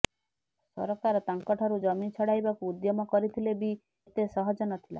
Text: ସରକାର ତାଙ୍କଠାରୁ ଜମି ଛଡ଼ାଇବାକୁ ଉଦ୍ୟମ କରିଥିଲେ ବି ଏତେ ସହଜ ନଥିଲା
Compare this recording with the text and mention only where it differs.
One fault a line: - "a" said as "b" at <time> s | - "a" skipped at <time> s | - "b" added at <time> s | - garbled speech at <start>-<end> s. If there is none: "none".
none